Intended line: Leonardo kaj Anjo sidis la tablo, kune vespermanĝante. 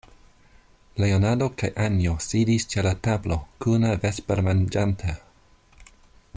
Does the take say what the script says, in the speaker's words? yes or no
no